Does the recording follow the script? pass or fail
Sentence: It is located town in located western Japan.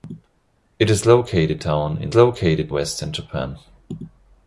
pass